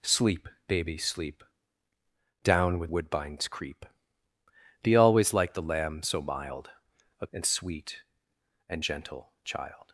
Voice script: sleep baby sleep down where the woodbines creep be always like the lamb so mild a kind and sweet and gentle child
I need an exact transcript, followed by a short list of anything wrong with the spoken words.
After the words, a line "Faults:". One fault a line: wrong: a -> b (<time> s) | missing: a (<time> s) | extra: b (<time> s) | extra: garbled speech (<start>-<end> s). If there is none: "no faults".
sleep baby sleep down where woodbines creep be always like the lamb so mild a and sweet and gentle child
Faults:
missing: the (2.9 s)
missing: kind (7.3 s)